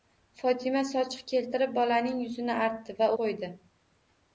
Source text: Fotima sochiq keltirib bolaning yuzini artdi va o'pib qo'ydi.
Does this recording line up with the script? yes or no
no